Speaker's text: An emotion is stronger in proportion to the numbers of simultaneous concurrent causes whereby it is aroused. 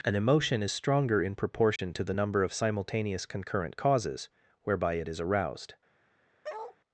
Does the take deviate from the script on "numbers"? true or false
true